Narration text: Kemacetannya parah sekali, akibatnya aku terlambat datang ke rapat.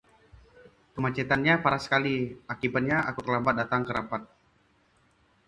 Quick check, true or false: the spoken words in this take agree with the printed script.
true